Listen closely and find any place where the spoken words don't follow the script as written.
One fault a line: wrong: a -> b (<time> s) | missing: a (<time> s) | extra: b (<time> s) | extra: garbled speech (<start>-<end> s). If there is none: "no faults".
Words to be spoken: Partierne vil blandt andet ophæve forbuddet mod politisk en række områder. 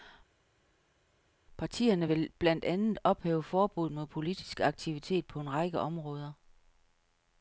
extra: aktivitet på (4.6 s)